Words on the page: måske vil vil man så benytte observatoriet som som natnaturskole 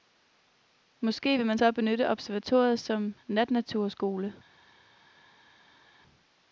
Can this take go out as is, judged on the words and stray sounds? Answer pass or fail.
fail